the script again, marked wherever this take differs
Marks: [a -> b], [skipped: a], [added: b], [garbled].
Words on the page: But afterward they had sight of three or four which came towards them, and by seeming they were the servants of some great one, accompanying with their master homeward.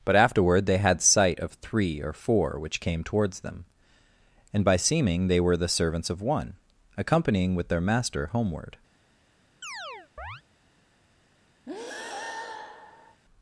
But afterward they had sight of three or four which came towards them, and by seeming they were the servants of [skipped: some great] one, accompanying with their master homeward.